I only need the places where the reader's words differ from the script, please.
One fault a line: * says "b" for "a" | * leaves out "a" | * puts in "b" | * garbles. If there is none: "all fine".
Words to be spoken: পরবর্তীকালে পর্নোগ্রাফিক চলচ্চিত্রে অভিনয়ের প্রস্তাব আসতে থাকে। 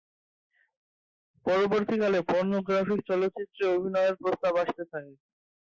all fine